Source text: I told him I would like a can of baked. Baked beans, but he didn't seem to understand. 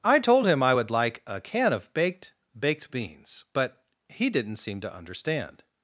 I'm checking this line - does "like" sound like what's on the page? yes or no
yes